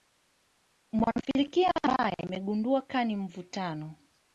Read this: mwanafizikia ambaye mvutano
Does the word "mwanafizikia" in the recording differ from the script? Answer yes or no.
no